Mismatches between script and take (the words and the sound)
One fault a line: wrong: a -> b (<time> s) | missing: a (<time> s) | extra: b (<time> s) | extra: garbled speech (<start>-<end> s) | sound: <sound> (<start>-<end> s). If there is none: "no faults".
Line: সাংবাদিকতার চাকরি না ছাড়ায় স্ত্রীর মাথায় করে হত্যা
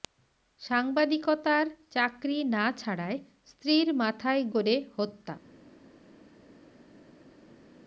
no faults